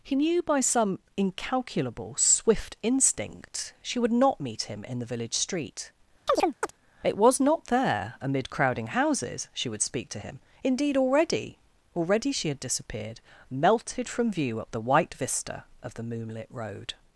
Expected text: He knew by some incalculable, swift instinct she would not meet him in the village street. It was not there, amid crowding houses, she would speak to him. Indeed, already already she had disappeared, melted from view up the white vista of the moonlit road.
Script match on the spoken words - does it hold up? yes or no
yes